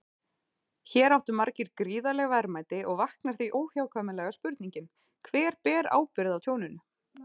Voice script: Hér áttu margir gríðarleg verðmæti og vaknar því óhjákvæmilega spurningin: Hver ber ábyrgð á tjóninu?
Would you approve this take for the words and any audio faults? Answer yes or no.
yes